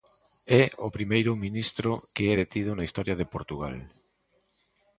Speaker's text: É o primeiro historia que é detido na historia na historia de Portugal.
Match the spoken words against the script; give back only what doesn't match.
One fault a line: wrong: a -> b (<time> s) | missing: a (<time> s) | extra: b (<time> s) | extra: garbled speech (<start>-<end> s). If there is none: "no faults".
wrong: historia -> ministro (1.4 s)
missing: na historia (3.1 s)